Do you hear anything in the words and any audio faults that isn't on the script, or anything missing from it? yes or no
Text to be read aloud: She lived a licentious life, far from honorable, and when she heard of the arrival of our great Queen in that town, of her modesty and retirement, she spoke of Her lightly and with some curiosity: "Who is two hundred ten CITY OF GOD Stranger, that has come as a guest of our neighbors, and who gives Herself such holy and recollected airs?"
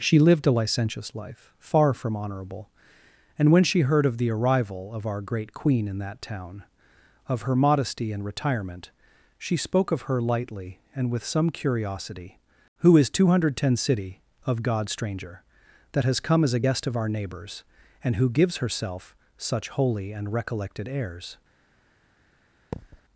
yes